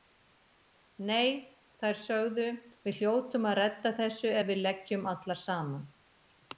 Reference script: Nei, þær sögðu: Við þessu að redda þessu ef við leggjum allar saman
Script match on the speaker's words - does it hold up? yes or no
no